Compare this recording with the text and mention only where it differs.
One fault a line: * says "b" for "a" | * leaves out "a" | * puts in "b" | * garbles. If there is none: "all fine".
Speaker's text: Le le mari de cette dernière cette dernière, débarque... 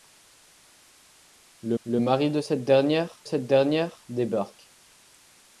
all fine